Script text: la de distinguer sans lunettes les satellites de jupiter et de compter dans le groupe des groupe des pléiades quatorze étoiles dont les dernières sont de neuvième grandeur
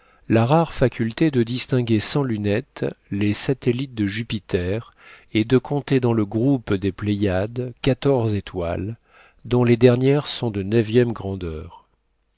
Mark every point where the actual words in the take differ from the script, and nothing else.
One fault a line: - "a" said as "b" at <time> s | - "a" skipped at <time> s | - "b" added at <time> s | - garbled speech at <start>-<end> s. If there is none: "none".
- "rare faculté" added at 0.5 s
- "groupe des" skipped at 6.9 s